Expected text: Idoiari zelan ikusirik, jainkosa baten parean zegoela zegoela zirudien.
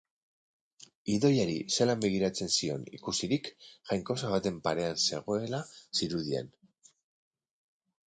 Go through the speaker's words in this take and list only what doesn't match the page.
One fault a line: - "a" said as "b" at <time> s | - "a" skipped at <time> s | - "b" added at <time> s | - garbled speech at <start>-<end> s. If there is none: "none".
- "begiratzen zion" added at 2.0 s
- "zegoela" skipped at 5.7 s